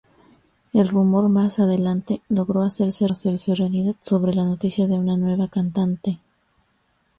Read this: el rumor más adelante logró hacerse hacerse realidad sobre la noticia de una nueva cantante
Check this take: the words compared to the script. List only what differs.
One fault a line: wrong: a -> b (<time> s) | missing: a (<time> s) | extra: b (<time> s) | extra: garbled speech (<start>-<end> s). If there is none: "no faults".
no faults